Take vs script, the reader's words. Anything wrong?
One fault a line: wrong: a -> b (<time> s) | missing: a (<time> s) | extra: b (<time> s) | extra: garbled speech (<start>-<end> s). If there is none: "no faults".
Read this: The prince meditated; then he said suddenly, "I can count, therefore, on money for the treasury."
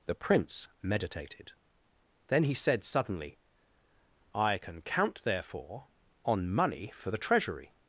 no faults